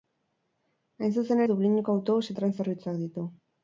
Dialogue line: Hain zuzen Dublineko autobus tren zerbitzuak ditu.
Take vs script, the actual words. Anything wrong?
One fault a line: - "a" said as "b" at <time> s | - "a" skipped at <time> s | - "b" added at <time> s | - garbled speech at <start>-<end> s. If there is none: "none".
none